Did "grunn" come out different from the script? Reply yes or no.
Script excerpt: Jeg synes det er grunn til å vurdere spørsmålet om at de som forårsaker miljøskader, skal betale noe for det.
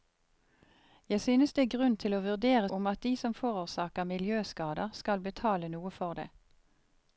no